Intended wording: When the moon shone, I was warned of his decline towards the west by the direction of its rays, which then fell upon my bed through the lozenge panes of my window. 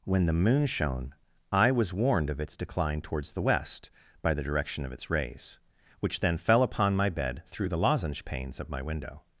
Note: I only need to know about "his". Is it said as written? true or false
false